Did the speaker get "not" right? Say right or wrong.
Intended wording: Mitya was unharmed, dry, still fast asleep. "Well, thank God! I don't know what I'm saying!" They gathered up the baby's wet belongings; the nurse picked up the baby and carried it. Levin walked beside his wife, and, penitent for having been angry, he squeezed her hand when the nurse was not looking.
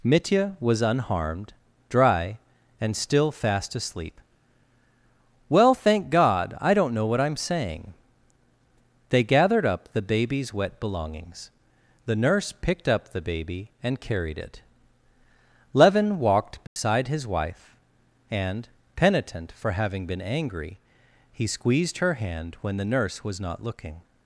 right